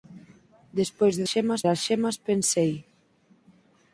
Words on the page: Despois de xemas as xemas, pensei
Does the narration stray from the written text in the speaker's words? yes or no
no